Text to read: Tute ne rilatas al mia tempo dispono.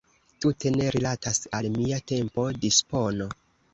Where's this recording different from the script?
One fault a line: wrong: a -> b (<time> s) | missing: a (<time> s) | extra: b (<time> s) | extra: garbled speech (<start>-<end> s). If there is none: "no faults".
no faults